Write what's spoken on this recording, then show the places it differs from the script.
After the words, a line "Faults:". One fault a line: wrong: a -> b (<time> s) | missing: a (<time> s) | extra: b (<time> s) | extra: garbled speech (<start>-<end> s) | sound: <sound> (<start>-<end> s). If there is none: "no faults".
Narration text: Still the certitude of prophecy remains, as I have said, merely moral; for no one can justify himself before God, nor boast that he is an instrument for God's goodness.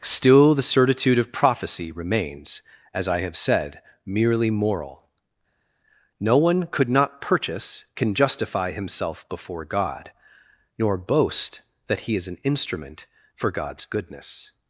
Still the certitude of prophecy remains, as I have said, merely moral; no one could not purchase can justify himself before God, nor boast that he is an instrument for God's goodness.
Faults:
missing: for (5.1 s)
extra: could not purchase (6.7 s)